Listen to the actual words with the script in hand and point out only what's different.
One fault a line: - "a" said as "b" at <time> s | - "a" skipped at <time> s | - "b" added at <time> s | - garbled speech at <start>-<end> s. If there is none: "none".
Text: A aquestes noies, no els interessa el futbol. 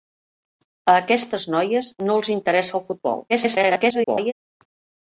- garbled speech at 3.3-4.3 s